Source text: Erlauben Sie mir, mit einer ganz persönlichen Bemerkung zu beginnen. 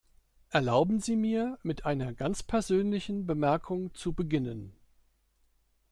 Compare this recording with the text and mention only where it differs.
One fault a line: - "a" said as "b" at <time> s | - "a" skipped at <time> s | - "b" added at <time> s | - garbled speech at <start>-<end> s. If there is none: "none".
none